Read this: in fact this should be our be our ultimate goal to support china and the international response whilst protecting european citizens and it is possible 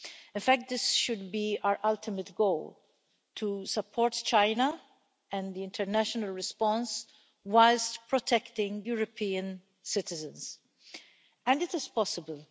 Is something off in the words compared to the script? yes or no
yes